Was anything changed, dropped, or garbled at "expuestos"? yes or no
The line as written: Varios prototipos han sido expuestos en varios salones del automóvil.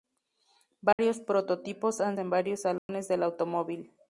yes